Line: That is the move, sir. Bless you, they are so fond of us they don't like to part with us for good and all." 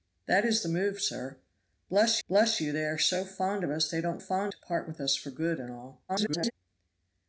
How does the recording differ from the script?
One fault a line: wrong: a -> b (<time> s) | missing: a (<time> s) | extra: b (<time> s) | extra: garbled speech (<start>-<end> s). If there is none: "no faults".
extra: bless (2.3 s)
wrong: like -> fond (4.2 s)
extra: garbled speech (6.1-6.5 s)